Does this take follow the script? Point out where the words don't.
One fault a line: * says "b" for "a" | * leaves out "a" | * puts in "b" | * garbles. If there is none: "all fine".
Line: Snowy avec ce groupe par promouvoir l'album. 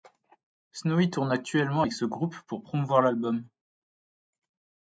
* puts in "tourne actuellement"
* says "pour" for "par"